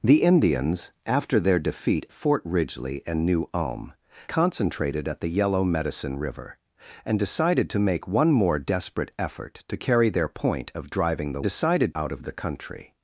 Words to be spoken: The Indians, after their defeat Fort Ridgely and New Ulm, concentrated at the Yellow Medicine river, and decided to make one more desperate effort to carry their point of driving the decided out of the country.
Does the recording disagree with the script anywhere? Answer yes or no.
no